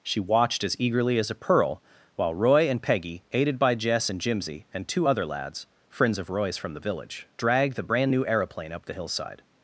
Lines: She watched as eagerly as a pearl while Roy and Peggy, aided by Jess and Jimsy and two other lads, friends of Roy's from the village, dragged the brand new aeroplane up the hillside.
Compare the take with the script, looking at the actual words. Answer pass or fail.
pass